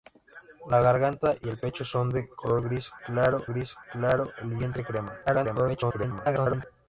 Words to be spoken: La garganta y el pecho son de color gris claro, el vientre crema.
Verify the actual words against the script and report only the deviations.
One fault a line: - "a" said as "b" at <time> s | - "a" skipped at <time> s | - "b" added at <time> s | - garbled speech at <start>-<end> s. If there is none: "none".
- "gris claro" added at 3.5 s
- garbled speech at 5.3-6.7 s